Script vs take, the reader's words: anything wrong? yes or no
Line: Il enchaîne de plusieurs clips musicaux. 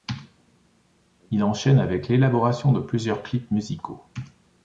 yes